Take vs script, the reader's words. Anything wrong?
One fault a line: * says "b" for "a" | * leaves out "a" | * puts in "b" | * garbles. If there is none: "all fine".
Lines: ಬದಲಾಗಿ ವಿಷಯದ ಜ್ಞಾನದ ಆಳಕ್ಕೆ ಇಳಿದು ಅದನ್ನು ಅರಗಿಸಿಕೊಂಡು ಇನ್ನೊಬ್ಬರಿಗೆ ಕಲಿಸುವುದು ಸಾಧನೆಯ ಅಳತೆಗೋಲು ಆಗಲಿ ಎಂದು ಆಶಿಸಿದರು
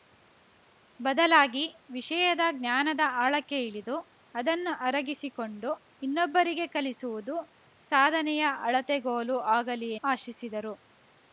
* leaves out "ಎಂದು"